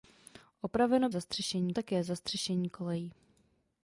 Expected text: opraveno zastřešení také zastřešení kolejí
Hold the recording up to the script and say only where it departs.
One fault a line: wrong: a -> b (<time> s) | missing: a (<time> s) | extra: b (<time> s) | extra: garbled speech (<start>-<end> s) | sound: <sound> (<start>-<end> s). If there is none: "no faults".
no faults